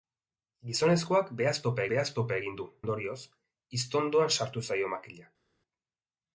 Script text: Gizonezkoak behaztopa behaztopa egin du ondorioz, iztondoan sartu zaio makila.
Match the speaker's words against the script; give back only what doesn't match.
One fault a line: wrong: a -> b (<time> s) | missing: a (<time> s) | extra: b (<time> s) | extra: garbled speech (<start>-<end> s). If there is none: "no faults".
no faults